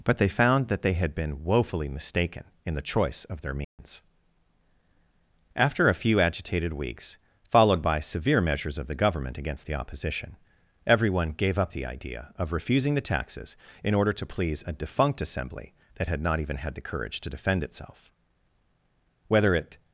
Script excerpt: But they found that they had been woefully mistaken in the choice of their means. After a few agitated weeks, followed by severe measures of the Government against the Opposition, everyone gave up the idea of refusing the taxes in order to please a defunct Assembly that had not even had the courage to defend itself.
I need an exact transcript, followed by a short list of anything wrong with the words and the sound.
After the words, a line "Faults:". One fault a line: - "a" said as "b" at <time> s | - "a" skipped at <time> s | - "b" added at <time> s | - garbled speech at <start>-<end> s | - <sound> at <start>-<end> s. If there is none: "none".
But they found that they had been woefully mistaken in the choice of their means. After a few agitated weeks, followed by severe measures of the Government against the Opposition, everyone gave up the idea of refusing the taxes in order to please a defunct Assembly that had not even had the courage to defend itself. Whether it
Faults:
- dropout at 3.6-3.8 s
- "Whether it" added at 19.3 s